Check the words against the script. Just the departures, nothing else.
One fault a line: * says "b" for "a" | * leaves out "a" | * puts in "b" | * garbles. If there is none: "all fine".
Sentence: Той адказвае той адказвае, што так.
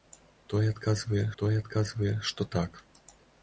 all fine